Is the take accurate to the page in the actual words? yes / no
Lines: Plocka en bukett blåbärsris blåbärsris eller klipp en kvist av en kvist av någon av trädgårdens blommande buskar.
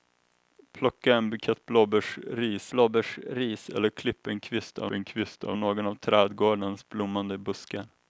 yes